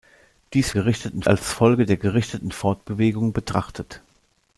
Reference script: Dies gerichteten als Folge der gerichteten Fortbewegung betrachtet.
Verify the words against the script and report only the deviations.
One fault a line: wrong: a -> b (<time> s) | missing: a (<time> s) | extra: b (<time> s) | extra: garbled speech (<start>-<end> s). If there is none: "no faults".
no faults